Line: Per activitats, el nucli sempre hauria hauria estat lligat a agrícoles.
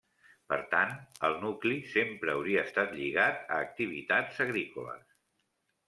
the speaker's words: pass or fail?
fail